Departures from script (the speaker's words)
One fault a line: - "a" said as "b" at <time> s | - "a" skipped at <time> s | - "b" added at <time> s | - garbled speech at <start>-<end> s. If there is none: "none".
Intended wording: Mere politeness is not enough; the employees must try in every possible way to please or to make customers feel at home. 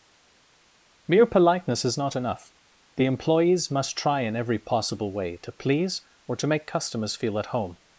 none